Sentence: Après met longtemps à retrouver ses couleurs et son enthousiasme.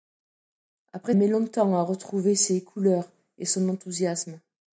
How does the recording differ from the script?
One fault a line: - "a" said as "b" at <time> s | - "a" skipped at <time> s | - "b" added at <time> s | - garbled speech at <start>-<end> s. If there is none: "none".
none